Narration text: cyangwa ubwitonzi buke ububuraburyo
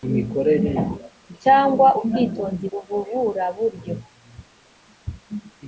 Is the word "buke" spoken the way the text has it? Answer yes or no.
no